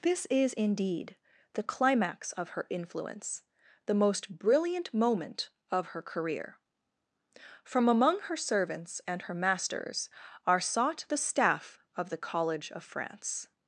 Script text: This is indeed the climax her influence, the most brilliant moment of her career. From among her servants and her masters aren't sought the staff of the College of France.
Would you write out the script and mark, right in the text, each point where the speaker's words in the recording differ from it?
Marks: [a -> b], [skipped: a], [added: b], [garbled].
This is indeed the climax [added: of] her influence, the most brilliant moment of her career. From among her servants and her masters [aren't -> are] sought the staff of the College of France.